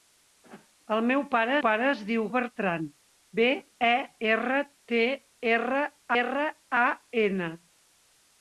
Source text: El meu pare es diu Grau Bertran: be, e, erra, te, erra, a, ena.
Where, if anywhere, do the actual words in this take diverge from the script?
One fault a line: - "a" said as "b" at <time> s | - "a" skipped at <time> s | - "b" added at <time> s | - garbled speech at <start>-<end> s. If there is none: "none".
- "pare" added at 1.6 s
- "Grau" skipped at 2.2 s
- "erra" added at 6.2 s